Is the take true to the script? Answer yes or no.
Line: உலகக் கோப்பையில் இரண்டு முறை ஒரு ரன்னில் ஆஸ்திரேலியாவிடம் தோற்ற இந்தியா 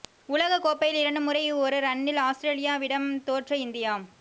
yes